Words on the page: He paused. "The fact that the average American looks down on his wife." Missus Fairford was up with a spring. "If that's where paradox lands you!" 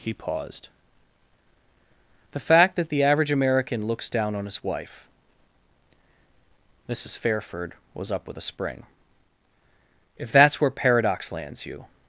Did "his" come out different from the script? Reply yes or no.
no